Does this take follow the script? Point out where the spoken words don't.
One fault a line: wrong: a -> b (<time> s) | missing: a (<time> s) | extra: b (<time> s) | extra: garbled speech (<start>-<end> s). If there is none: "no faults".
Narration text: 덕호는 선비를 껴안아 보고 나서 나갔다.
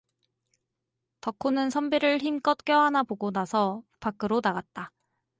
extra: 힘껏 (2.2 s)
extra: 밖으로 (4.0 s)